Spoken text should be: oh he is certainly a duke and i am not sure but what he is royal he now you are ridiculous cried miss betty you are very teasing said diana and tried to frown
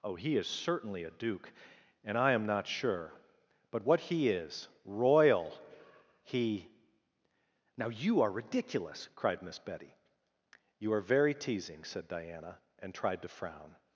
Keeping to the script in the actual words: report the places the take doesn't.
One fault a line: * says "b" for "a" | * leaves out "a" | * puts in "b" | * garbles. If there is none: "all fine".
all fine